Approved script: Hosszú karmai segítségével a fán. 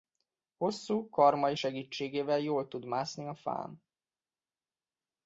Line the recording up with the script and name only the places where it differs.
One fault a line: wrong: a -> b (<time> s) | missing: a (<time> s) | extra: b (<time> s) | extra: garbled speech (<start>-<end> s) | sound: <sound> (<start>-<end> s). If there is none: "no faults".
extra: jól tud mászni (2.4 s)